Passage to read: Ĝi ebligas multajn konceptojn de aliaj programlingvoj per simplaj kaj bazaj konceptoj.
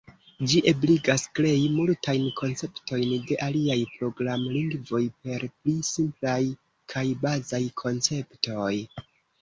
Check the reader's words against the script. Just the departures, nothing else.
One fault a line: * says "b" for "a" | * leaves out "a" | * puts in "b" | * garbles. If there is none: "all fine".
* puts in "krei"
* puts in "pli"